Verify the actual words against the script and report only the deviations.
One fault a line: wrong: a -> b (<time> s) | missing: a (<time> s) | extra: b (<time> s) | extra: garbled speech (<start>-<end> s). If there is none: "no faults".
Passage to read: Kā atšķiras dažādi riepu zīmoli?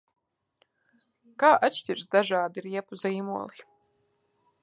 no faults